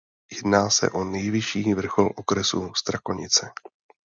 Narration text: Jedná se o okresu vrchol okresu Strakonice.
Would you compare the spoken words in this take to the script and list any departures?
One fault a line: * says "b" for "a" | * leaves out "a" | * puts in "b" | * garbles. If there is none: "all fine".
* says "nejvyšší" for "okresu"